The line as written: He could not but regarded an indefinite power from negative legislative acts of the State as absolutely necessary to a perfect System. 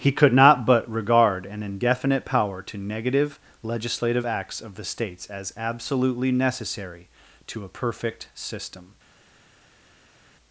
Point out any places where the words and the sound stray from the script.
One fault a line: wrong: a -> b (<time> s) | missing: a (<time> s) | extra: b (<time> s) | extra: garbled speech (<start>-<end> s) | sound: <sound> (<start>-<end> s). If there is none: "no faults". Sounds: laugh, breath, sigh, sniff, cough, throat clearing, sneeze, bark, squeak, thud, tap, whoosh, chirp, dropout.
wrong: regarded -> regard (0.9 s)
wrong: from -> to (2.6 s)
wrong: State -> States (4.9 s)